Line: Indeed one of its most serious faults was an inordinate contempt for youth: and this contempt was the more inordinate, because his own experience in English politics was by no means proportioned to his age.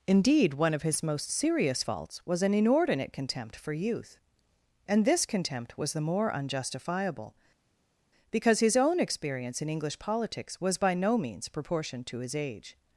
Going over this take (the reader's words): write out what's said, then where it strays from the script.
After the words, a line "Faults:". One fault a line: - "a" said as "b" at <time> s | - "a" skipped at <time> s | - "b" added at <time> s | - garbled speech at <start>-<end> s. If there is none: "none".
Indeed one of his most serious faults was an inordinate contempt for youth: and this contempt was the more unjustifiable, because his own experience in English politics was by no means proportioned to his age.
Faults:
- "its" said as "his" at 0.8 s
- "inordinate" said as "unjustifiable" at 6.3 s